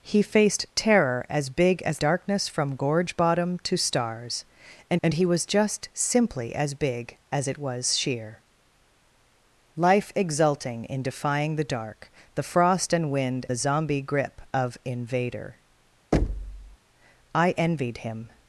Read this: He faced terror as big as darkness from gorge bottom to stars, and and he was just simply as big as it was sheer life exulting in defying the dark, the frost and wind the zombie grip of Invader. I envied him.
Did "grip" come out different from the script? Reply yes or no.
no